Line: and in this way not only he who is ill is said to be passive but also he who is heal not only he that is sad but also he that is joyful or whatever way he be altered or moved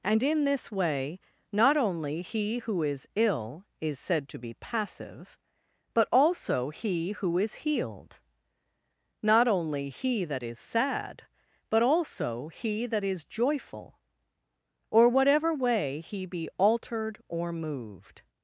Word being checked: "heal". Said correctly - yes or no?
no